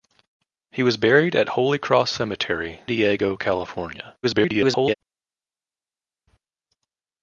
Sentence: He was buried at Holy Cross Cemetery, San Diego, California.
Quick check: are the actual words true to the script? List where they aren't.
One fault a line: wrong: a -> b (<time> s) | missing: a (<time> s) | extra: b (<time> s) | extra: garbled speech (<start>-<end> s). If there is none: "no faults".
missing: San (2.8 s)
extra: garbled speech (4.2-4.9 s)